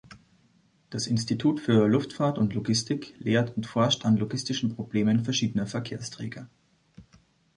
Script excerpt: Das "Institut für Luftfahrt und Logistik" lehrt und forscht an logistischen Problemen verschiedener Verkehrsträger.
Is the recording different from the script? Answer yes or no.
no